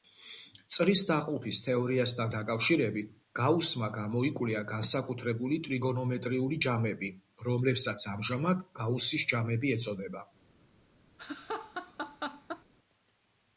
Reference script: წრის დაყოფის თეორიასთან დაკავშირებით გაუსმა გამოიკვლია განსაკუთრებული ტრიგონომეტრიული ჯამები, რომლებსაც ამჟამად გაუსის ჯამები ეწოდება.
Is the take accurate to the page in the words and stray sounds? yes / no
no